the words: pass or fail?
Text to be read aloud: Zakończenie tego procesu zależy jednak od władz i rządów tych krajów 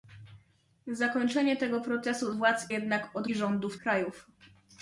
fail